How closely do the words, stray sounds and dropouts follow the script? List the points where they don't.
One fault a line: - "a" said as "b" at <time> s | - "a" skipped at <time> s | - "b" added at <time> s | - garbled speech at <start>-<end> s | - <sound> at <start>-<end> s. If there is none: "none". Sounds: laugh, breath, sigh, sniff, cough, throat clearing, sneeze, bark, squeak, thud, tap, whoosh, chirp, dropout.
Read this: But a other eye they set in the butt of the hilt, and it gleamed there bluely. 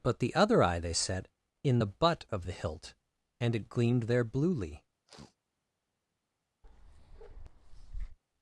- "a" said as "the" at 0.2 s
- sniff at 5.1-5.4 s
- bark at 6.6-8.2 s